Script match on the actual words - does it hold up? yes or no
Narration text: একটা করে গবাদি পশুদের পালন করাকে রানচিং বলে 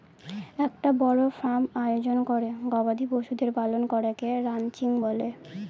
no